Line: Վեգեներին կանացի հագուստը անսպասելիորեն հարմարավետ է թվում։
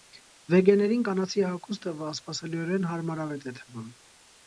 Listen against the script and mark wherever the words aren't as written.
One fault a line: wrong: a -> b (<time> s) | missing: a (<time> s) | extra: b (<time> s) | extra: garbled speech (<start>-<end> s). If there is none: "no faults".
no faults